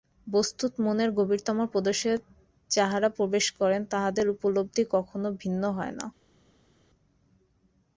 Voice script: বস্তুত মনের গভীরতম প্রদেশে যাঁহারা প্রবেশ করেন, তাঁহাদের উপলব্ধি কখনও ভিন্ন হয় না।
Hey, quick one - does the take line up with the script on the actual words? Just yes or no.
yes